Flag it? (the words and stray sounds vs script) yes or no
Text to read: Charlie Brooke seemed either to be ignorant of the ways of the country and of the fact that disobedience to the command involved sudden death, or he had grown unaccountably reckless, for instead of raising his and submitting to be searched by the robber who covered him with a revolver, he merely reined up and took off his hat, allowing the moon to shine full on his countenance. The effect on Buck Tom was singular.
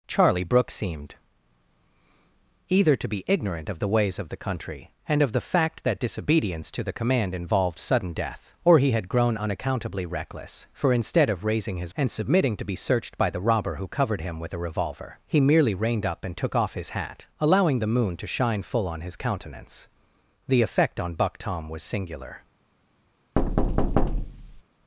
yes